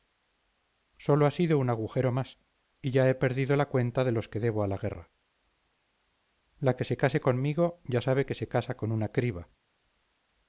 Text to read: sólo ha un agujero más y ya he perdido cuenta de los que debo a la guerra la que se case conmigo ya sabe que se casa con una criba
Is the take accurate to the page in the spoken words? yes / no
no